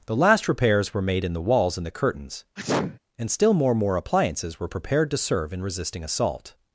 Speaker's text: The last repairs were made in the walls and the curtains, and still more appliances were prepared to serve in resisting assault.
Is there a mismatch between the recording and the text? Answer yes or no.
yes